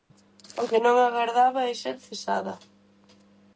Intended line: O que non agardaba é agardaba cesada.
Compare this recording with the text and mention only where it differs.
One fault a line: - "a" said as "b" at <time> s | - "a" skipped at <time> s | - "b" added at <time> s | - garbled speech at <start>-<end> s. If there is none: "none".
- "agardaba" said as "ser" at 1.8 s